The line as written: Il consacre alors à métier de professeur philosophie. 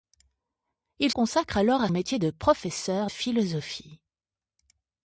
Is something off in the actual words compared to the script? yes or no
no